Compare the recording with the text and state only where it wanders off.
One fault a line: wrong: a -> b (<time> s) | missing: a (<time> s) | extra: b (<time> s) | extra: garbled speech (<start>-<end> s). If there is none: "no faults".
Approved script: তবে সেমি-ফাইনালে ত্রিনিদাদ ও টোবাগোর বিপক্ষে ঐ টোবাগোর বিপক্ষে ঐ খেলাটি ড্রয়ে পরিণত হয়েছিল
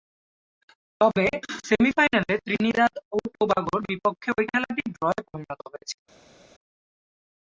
missing: টোবাগোর বিপক্ষে ঐ (4.5 s)